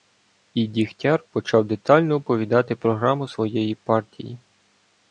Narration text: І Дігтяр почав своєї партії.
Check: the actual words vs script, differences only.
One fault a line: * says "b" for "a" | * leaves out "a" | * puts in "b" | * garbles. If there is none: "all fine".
* puts in "детально оповідати програму"